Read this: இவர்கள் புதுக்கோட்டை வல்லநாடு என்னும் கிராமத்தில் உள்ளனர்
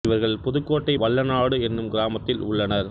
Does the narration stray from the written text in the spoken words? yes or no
no